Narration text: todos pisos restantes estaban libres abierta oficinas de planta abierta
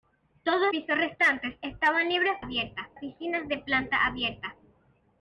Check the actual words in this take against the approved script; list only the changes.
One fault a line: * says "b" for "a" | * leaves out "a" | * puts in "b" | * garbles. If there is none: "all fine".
all fine